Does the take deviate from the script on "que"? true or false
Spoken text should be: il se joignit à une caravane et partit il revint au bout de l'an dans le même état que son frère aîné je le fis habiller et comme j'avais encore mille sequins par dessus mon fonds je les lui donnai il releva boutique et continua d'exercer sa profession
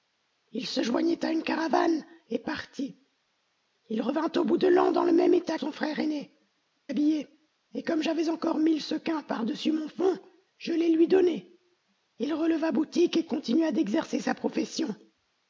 true